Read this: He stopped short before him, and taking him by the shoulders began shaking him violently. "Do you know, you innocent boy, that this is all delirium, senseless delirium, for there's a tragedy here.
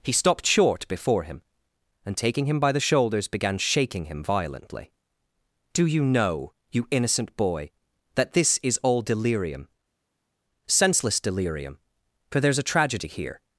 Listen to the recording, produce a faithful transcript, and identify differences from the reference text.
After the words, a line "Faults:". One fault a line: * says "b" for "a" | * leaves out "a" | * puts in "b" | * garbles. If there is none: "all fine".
He stopped short before him, and taking him by the shoulders began shaking him violently. "Do you know, you innocent boy, that this is all delirium, senseless delirium, for there's a tragedy here.
Faults:
all fine